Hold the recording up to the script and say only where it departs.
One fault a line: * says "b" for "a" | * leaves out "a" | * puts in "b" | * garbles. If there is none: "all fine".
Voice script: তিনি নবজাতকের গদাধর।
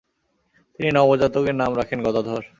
* puts in "নাম রাখেন"